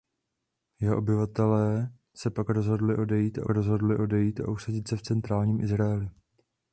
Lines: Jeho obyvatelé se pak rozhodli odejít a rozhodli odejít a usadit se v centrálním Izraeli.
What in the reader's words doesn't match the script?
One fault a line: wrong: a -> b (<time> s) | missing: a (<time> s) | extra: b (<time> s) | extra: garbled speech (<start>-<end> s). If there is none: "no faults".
no faults